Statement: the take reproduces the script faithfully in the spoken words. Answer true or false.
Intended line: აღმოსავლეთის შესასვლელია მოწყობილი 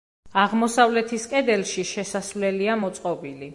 false